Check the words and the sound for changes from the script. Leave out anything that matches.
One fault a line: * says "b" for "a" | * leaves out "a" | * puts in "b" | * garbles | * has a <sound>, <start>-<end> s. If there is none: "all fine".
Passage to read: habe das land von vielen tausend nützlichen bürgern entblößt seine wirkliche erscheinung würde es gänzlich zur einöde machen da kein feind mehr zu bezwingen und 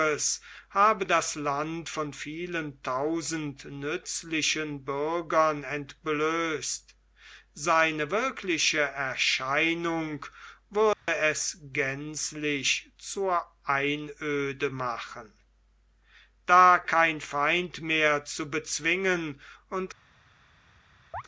* has a dropout, 10.9-11.1 s
* has a chirp, 21.1-21.2 s